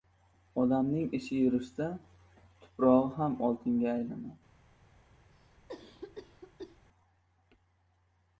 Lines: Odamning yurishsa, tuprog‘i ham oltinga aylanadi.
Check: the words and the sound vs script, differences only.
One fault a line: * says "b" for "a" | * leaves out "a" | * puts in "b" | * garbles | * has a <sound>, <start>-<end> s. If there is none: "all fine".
* puts in "ishi"
* has a cough, 5.3-6.8 s